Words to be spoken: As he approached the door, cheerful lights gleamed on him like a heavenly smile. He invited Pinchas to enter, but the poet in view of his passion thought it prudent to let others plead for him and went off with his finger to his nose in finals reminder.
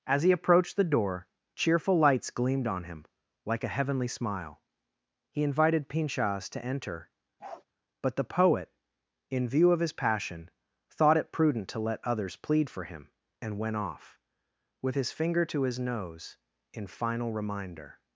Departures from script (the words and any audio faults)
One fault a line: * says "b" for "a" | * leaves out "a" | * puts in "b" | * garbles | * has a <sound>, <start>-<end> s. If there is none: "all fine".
* has a bark, 7.4-7.6 s
* says "final" for "finals"